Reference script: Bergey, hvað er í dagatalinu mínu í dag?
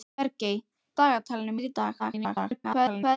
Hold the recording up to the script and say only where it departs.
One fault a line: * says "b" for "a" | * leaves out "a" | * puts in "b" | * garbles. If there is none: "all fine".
* says "dagatalinu" for "hvað"
* leaves out "dagatalinu mínu"
* garbles